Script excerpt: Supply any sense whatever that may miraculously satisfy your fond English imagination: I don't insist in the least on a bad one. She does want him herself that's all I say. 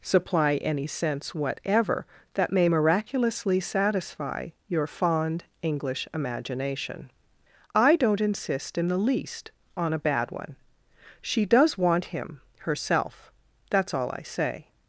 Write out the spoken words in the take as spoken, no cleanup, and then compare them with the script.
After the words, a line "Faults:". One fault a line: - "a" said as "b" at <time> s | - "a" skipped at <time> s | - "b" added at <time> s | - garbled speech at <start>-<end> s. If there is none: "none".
Supply any sense whatever that may miraculously satisfy your fond English imagination: I don't insist in the least on a bad one. She does want him herself that's all I say.
Faults:
none